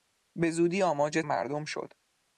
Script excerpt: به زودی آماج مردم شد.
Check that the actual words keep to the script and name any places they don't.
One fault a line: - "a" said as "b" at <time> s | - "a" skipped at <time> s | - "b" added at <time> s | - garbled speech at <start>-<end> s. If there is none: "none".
none